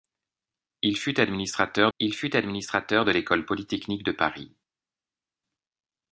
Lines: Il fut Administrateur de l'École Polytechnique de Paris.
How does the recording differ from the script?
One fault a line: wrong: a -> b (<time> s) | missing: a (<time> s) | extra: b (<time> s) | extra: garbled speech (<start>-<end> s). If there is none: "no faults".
extra: il fut Administrateur (2.0 s)